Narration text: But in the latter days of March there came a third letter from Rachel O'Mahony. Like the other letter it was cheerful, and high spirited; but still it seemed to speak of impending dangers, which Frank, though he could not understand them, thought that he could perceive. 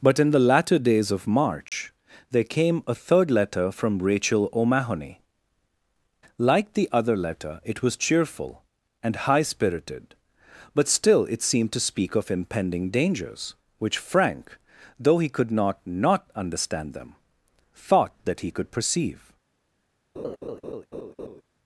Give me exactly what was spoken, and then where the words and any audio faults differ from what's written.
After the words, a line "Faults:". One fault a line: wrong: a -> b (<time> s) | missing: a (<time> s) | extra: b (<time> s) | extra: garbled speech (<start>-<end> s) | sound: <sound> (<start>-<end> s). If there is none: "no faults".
But in the latter days of March there came a third letter from Rachel O'Mahony. Like the other letter it was cheerful, and high spirited; but still it seemed to speak of impending dangers, which Frank, though he could not not understand them, thought that he could perceive.
Faults:
sound: dropout (1.7-1.7 s)
extra: not (15.8 s)
sound: laugh (20.1-21.4 s)